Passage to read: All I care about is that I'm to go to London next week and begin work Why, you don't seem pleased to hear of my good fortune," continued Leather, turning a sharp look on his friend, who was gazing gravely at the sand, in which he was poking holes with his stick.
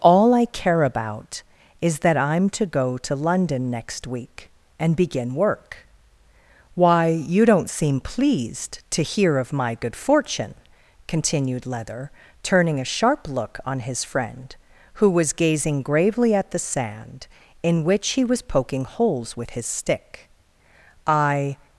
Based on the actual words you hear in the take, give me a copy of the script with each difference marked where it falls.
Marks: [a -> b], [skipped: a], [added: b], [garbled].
All I care about is that I'm to go to London next week and begin work Why, you don't seem pleased to hear of my good fortune," continued Leather, turning a sharp look on his friend, who was gazing gravely at the sand, in which he was poking holes with his stick. [added: I]